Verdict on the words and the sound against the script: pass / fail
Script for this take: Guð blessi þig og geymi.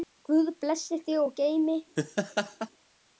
fail